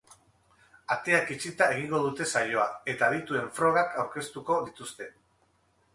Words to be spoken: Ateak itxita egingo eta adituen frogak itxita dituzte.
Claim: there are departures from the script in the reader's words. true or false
true